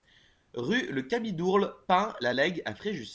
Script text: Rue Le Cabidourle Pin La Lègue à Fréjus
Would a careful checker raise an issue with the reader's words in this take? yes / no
no